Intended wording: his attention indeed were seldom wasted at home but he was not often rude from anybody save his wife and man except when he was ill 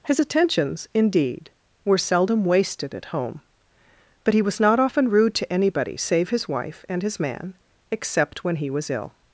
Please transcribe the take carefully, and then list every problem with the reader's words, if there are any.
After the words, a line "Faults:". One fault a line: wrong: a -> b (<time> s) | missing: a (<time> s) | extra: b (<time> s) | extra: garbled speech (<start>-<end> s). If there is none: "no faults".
his attentions indeed were seldom wasted at home but he was not often rude to anybody save his wife and his man except when he was ill
Faults:
wrong: attention -> attentions (0.2 s)
wrong: from -> to (5.4 s)
extra: his (7.0 s)